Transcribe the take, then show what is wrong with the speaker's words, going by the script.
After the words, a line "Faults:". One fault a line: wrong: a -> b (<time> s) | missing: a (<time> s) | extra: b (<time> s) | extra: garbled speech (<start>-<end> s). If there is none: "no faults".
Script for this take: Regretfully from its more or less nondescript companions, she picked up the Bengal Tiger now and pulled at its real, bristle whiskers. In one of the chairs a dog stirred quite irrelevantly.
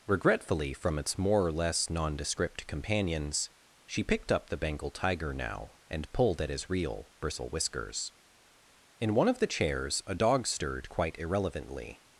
Regretfully from its more or less nondescript companions, she picked up the Bengal Tiger now and pulled at his real, bristle whiskers. In one of the chairs a dog stirred quite irrelevantly.
Faults:
wrong: its -> his (6.5 s)